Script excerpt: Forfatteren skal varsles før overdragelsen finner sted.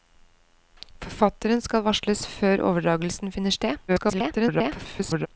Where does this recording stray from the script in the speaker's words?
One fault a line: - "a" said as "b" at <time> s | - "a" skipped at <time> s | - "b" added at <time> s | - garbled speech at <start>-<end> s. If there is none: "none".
- garbled speech at 3.9-5.3 s